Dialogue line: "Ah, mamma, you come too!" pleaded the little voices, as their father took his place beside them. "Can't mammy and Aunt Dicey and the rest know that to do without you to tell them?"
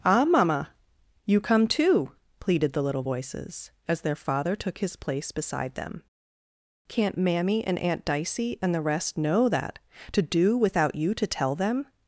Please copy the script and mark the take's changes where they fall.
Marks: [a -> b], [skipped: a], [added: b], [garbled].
"Ah, mamma, you come too!" pleaded the little voices, as their father took his place beside them. "Can't mammy and Aunt Dicey and the rest know that to do without you to tell them?"